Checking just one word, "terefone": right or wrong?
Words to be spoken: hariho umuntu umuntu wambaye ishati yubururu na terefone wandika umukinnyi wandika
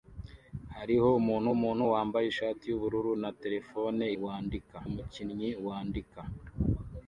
right